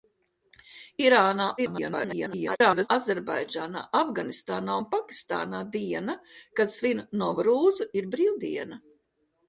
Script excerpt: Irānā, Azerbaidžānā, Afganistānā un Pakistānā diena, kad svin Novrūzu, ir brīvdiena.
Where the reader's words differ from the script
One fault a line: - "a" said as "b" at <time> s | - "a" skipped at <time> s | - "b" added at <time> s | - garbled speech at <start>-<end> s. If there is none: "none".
- garbled speech at 1.6-2.9 s